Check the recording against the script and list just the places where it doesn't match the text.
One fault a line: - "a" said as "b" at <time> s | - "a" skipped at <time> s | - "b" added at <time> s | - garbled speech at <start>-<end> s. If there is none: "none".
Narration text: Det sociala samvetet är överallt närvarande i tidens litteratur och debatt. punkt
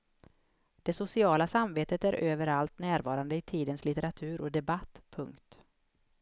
none